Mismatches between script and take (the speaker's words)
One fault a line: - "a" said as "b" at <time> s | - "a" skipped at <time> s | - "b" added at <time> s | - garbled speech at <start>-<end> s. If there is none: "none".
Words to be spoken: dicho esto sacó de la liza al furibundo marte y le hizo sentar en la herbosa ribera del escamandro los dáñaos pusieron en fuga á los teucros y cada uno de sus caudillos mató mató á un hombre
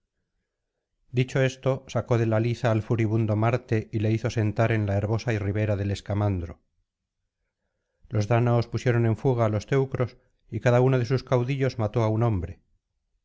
- "mató" skipped at 12.0 s